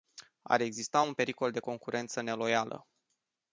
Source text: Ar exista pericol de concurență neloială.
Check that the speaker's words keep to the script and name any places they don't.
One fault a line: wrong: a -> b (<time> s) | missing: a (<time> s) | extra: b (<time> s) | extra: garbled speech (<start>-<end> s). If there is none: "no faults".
extra: un (1.0 s)